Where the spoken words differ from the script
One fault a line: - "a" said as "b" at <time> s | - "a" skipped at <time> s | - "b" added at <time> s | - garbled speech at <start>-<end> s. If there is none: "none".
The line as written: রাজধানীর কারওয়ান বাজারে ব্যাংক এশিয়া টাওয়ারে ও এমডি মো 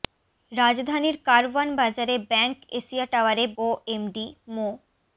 none